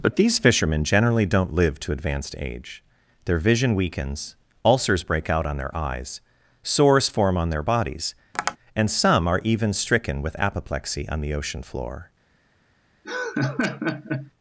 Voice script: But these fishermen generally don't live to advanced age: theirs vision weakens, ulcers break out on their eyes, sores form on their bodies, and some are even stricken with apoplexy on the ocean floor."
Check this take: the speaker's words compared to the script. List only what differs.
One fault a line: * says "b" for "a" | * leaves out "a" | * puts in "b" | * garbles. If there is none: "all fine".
* says "their" for "theirs"